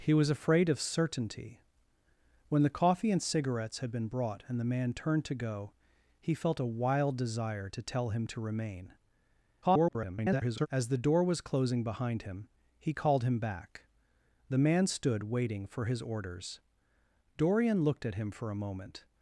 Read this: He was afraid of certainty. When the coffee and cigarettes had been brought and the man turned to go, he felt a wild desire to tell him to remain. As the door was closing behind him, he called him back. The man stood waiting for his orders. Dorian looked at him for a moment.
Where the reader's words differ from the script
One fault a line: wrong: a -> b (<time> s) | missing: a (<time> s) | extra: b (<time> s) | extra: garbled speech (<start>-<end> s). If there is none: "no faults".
extra: garbled speech (9.6-10.7 s)